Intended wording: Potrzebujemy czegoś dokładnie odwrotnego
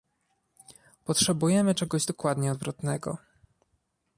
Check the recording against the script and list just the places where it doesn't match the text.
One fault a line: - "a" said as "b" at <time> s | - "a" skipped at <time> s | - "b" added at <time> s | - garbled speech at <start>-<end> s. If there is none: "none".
none